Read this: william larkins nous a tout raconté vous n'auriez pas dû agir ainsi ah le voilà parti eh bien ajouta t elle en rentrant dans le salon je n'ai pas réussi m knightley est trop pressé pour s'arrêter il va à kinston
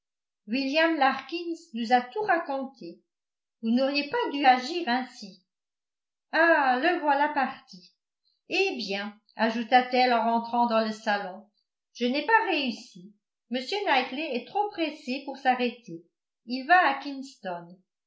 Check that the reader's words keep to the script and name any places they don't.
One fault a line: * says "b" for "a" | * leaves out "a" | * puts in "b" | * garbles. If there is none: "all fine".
all fine